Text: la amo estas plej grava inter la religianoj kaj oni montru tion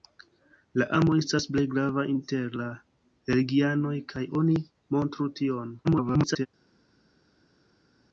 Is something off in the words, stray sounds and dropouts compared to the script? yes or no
yes